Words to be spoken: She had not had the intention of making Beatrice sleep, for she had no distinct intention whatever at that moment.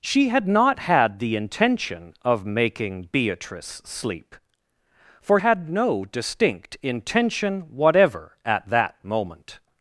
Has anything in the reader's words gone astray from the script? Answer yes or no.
yes